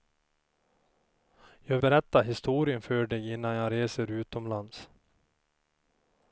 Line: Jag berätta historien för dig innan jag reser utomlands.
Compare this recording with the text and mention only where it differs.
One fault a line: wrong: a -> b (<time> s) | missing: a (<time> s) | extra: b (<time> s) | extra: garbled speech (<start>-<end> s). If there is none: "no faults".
no faults